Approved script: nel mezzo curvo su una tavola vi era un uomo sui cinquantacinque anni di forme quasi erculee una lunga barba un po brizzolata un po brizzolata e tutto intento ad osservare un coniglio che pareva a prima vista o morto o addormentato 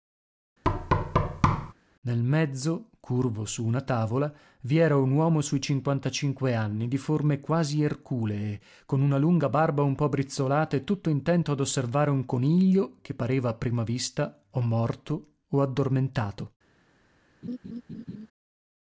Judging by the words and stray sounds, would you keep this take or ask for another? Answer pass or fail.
fail